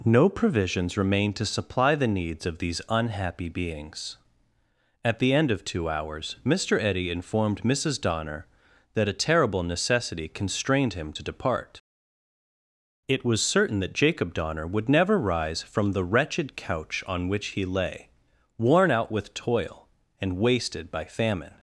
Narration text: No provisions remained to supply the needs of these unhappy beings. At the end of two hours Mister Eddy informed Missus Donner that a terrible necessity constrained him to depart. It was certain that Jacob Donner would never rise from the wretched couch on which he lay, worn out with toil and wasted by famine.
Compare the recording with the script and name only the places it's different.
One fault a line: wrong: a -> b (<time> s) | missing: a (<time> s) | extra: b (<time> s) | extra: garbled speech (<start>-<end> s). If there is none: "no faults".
no faults